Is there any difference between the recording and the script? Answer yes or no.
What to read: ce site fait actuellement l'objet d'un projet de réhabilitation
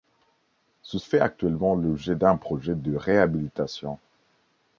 yes